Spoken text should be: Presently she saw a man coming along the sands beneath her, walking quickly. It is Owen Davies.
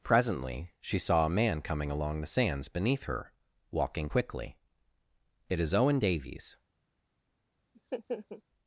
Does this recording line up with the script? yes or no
yes